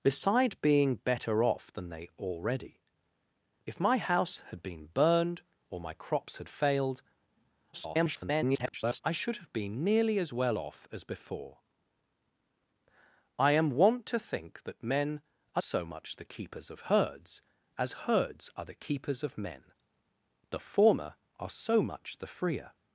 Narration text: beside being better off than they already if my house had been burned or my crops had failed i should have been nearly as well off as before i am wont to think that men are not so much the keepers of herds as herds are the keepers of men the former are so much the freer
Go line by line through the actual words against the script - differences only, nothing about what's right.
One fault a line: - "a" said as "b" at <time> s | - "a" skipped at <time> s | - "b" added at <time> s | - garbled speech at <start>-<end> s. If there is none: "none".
- garbled speech at 7.7-9.0 s
- "not" skipped at 15.6 s